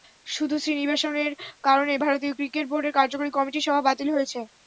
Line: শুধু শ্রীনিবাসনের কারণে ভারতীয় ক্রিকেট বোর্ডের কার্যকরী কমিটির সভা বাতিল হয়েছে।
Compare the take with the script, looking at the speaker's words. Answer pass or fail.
pass